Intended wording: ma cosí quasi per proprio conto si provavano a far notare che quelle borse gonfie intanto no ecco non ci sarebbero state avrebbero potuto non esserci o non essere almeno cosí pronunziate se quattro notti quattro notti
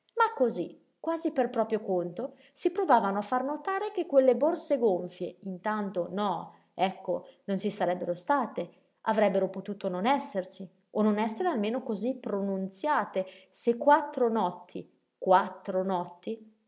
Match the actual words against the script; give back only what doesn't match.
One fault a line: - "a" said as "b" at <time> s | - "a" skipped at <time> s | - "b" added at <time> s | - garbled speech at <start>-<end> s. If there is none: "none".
none